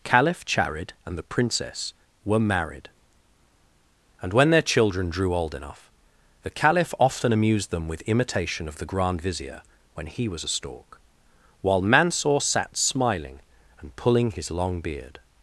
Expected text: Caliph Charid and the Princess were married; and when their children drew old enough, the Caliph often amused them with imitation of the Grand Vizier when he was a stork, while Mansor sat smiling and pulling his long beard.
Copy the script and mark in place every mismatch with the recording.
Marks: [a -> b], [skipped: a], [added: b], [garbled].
Caliph Charid and the Princess were married; and when their children drew old enough, the Caliph often amused them with imitation of the Grand Vizier when he was a stork, while Mansor sat smiling and pulling his long beard.